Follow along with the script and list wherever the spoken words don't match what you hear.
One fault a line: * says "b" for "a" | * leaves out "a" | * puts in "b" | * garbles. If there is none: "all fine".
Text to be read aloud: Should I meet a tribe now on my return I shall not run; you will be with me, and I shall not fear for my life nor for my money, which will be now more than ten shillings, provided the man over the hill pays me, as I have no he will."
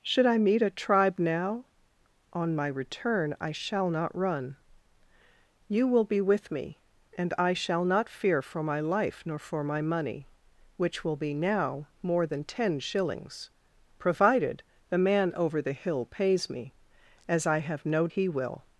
all fine